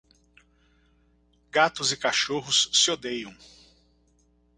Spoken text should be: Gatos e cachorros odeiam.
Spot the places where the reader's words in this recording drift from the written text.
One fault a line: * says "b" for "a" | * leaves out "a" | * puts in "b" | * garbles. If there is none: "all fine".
* puts in "se"